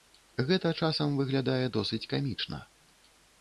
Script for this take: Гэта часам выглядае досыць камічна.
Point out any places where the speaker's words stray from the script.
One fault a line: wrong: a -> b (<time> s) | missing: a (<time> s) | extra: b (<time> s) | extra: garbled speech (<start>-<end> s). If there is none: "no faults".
no faults